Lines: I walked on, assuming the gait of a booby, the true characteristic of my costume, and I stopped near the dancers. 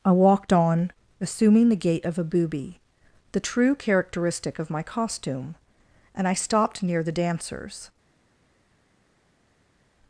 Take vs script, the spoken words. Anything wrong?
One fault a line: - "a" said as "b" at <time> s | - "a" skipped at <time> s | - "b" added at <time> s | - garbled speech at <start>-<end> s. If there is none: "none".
none